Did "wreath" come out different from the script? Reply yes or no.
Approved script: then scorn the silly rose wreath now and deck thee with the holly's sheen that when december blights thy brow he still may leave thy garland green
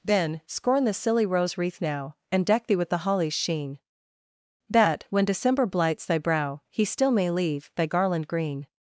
no